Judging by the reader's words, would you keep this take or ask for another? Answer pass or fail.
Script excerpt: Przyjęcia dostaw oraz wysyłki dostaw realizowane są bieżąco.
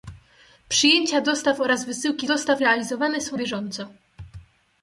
pass